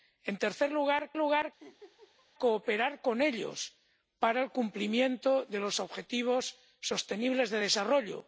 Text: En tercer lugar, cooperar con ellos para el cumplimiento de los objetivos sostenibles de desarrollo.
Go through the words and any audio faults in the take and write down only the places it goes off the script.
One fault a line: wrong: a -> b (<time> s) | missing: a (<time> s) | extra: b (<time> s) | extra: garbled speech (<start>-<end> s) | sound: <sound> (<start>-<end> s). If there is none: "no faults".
extra: lugar (1.2 s)
sound: laugh (1.6-2.3 s)